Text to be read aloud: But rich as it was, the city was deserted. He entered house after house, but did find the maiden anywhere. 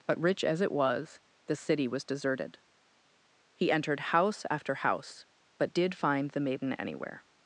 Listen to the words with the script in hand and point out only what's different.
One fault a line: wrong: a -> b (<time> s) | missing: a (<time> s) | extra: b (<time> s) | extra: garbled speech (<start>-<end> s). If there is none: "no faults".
no faults